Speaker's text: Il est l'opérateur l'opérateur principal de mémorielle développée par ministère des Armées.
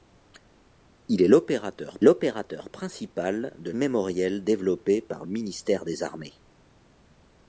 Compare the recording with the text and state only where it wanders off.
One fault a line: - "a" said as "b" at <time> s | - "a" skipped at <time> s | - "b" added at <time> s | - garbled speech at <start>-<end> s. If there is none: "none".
none